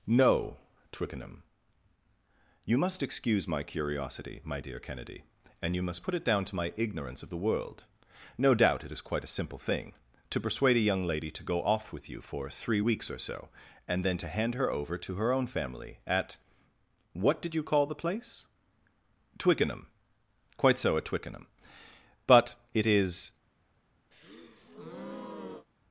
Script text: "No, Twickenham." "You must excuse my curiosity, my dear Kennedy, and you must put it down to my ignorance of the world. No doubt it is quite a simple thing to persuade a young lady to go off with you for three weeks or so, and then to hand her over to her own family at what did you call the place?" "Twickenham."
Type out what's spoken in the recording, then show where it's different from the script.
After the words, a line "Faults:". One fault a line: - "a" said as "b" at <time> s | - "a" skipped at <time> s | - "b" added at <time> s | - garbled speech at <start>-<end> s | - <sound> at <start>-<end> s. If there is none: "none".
"No, Twickenham." "You must excuse my curiosity, my dear Kennedy, and you must put it down to my ignorance of the world. No doubt it is quite a simple thing to persuade a young lady to go off with you for three weeks or so, and then to hand her over to her own family at what did you call the place?" "Twickenham." "Quite so at Twickenham. But it is
Faults:
- "Quite so at Twickenham But it is" added at 20.6 s
- breath at 24.1-25.7 s